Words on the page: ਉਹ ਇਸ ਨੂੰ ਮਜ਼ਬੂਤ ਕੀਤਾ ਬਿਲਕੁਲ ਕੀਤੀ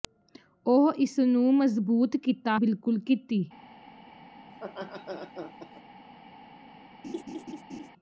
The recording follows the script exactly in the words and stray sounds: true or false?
false